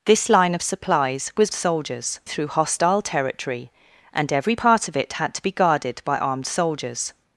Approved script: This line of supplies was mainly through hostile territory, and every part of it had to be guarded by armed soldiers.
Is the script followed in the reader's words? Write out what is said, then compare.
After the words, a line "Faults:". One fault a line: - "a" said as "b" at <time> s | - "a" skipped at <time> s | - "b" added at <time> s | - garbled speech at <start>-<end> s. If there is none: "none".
This line of supplies was soldiers through hostile territory, and every part of it had to be guarded by armed soldiers.
Faults:
- "mainly" said as "soldiers" at 1.5 s